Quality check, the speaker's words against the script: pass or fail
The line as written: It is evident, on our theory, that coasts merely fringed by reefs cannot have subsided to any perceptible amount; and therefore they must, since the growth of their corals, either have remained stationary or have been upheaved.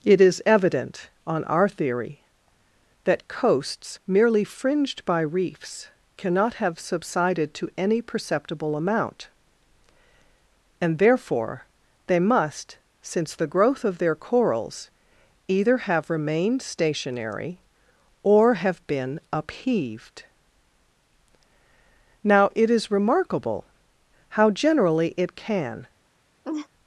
fail